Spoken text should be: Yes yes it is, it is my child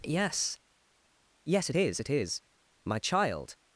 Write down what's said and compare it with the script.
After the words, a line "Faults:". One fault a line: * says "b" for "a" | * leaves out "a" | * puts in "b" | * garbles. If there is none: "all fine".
Yes yes it is, it is my child
Faults:
all fine